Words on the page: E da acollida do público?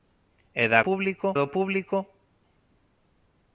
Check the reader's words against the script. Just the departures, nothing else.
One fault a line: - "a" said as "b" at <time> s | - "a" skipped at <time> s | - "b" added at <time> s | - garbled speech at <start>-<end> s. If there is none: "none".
- "acollida" said as "público" at 0.9 s